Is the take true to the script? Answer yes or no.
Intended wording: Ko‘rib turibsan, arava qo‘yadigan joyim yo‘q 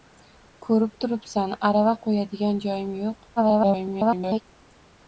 no